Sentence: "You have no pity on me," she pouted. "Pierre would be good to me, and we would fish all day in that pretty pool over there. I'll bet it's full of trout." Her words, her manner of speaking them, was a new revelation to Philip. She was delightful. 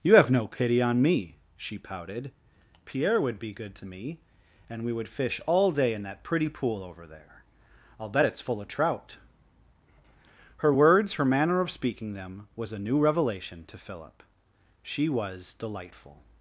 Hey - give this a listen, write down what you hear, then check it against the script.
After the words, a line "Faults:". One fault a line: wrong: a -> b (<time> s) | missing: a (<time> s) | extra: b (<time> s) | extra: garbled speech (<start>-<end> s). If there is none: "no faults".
"You have no pity on me," she pouted. "Pierre would be good to me, and we would fish all day in that pretty pool over there. I'll bet it's full of trout." Her words, her manner of speaking them, was a new revelation to Philip. She was delightful.
Faults:
no faults